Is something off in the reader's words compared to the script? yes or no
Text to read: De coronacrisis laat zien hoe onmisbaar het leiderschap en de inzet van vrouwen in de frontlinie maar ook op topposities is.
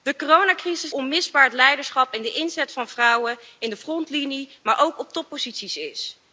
yes